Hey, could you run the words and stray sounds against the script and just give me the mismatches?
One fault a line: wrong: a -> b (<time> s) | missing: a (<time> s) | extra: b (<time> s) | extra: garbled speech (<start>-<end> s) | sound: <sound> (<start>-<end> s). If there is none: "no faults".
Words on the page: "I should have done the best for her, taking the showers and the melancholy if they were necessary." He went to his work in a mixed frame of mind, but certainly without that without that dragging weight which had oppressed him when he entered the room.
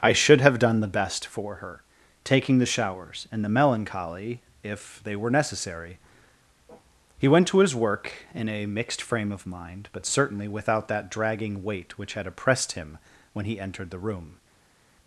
missing: without that (11.1 s)